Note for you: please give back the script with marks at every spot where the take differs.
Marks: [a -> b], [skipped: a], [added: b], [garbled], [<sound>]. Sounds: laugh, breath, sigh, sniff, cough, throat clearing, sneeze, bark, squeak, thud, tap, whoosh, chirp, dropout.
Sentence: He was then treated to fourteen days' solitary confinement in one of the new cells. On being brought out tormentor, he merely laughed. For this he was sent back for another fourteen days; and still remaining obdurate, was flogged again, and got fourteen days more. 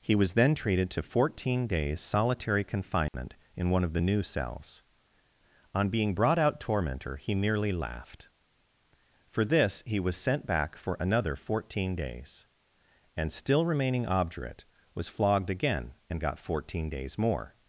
He was then treated to fourteen days' solitary confinement [dropout] in one of the new cells. On being brought out tormentor, he merely laughed. For this he was sent back for another fourteen days; and still remaining obdurate, was flogged again, and got fourteen days more.